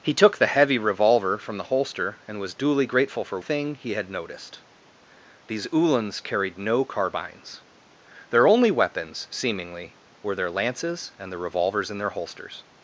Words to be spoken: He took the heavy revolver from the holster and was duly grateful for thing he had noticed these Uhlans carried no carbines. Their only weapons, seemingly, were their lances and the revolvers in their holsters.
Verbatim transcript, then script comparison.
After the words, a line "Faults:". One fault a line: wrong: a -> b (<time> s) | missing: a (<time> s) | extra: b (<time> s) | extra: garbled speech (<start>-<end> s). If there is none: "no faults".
He took the heavy revolver from the holster and was duly grateful for thing he had noticed these Uhlans carried no carbines. Their only weapons, seemingly, were their lances and the revolvers in their holsters.
Faults:
no faults